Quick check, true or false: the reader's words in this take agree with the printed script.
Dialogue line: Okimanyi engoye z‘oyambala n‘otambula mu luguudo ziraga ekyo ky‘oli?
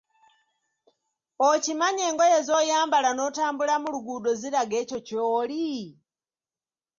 true